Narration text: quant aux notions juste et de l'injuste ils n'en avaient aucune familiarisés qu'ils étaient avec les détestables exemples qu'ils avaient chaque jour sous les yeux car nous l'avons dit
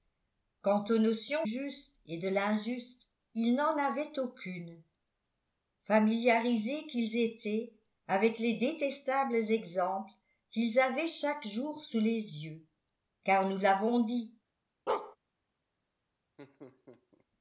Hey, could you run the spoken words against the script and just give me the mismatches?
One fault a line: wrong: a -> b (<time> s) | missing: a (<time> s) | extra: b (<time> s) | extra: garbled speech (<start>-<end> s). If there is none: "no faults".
no faults